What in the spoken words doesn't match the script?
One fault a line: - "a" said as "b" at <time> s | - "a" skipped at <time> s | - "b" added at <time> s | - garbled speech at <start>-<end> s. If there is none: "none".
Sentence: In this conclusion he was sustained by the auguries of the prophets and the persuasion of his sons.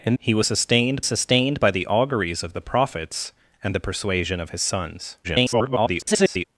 - "this conclusion" skipped at 0.1 s
- "sustained" added at 1.1 s
- garbled speech at 5.2-6.5 s